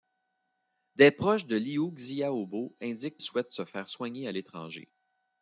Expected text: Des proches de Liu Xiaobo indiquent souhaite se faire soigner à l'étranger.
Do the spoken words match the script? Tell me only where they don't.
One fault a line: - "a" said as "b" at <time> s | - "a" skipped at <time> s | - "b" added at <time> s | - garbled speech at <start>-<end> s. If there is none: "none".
none